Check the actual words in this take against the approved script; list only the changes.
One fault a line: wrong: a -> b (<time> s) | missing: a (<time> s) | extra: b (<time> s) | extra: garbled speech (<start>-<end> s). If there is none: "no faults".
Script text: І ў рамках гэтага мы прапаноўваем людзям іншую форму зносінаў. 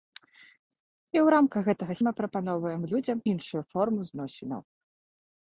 no faults